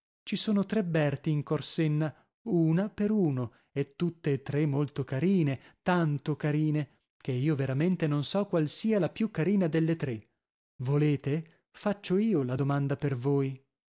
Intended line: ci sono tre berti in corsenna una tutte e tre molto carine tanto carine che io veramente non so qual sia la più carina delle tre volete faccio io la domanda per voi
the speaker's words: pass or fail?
fail